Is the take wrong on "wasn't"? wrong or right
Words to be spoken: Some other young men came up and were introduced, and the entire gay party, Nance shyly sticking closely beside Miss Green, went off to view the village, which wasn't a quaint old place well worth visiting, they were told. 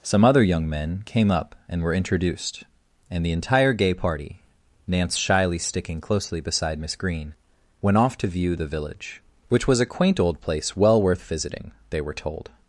wrong